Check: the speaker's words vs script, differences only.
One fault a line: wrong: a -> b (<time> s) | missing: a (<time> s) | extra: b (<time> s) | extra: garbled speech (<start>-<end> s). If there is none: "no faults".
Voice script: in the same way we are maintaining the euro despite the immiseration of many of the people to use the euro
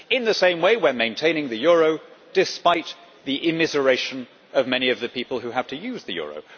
extra: who have (5.4 s)